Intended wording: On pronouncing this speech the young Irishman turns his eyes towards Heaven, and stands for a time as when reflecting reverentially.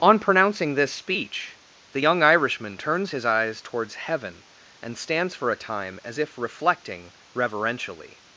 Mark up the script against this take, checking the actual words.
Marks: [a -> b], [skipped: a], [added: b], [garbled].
On pronouncing this speech the young Irishman turns his eyes towards Heaven, and stands for a time as [when -> if] reflecting reverentially.